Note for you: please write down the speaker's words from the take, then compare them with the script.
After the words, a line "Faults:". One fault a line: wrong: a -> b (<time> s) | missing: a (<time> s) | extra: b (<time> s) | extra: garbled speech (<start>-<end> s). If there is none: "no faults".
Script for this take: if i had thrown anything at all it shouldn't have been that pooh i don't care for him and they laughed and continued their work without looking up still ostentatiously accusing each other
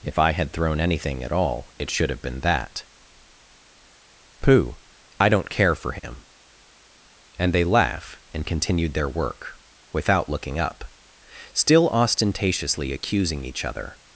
if i had thrown anything at all it should have been that pooh i don't care for him and they laugh and continued their work without looking up still ostentatiously accusing each other
Faults:
wrong: shouldn't -> should (1.9 s)
wrong: laughed -> laugh (7.6 s)